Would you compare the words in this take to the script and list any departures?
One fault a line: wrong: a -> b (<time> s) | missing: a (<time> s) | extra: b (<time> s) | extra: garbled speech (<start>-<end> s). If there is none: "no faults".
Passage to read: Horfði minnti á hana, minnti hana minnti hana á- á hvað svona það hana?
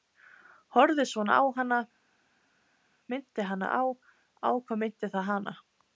wrong: minnti -> svona (1.1 s)
missing: minnti hana (3.7 s)
wrong: svona -> minnti (4.9 s)